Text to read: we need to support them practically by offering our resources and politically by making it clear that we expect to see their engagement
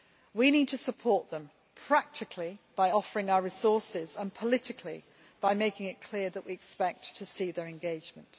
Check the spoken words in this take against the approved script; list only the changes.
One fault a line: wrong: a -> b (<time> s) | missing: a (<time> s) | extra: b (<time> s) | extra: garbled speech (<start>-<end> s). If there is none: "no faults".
no faults